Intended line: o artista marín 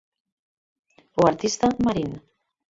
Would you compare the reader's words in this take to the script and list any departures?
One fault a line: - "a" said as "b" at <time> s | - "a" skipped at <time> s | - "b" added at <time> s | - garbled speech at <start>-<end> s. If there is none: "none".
none